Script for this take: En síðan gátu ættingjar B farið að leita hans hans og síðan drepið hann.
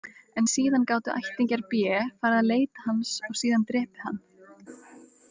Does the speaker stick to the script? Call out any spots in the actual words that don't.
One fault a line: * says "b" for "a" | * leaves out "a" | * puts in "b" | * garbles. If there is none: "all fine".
* leaves out "hans"